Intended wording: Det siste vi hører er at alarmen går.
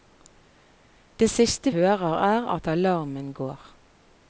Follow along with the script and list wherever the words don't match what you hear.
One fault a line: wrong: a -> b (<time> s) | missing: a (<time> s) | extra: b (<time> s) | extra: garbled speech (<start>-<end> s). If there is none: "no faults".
missing: vi (1.7 s)